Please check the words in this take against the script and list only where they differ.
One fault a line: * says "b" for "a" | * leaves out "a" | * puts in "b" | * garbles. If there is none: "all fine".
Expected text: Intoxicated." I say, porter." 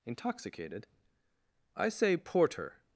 all fine